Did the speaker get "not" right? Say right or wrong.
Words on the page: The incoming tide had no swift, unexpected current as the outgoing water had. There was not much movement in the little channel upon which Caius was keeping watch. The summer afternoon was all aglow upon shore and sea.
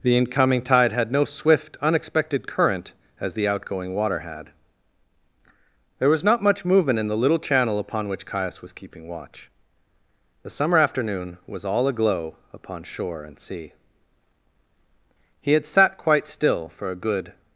right